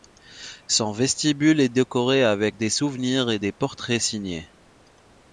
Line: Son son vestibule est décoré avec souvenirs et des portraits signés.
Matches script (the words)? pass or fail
fail